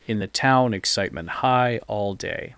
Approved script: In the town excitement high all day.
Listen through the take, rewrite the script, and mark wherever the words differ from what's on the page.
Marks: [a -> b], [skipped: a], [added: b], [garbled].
In the town excitement high all day.